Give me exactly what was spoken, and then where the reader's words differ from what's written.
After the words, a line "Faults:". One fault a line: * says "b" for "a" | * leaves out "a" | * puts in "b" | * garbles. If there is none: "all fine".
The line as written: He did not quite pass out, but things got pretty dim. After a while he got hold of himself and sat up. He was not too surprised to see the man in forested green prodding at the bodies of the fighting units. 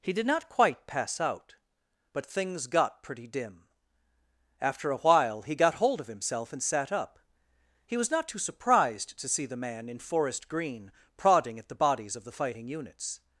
He did not quite pass out, but things got pretty dim. After a while he got hold of himself and sat up. He was not too surprised to see the man in forest green prodding at the bodies of the fighting units.
Faults:
* says "forest" for "forested"